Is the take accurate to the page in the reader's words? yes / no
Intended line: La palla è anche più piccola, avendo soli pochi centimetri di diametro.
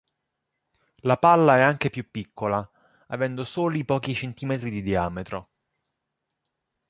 yes